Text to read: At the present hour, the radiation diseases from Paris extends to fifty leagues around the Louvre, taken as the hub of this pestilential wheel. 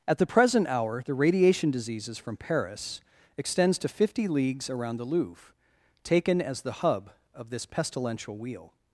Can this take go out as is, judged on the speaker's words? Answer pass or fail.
pass